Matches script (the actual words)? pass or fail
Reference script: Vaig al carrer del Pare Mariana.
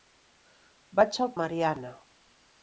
fail